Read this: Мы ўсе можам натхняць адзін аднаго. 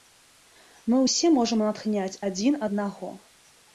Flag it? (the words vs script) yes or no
no